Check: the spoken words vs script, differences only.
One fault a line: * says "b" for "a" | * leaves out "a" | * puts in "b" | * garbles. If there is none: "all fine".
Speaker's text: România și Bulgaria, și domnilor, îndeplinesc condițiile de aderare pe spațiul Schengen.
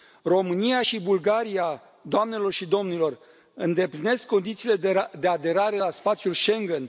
* puts in "doamnelor"
* says "la" for "pe"